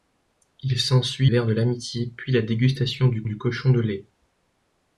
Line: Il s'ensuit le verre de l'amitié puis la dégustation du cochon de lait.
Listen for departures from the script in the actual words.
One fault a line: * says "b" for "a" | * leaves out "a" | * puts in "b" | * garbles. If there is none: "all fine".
* leaves out "le"
* puts in "du"